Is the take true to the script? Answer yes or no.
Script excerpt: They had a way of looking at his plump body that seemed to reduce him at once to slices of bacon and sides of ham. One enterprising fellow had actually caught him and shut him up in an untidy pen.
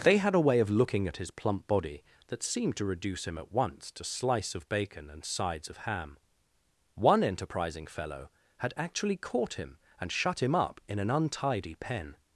no